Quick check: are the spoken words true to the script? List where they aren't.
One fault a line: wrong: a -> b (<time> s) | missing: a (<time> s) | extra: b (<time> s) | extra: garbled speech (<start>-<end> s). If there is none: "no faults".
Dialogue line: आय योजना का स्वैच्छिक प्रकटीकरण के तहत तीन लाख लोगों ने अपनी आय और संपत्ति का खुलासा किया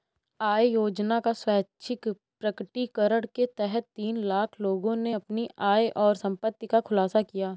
no faults